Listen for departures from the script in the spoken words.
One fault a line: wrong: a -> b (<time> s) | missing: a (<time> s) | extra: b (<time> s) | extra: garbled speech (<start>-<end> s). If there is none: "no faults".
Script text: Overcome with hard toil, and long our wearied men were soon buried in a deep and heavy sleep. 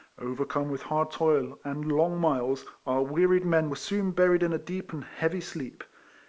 extra: miles (2.2 s)